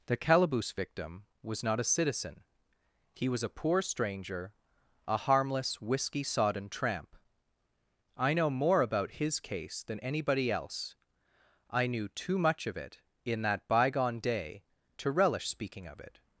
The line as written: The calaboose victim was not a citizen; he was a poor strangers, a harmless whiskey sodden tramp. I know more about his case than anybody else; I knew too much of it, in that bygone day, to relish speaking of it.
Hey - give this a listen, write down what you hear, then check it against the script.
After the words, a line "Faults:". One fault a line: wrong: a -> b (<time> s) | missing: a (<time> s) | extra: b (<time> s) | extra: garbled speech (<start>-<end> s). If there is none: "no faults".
The calaboose victim was not a citizen; he was a poor stranger, a harmless whiskey sodden tramp. I know more about his case than anybody else; I knew too much of it, in that bygone day, to relish speaking of it.
Faults:
wrong: strangers -> stranger (3.8 s)